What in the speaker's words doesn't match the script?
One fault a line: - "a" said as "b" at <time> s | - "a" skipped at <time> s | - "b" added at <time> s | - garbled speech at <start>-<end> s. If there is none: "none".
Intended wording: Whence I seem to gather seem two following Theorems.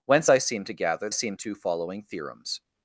none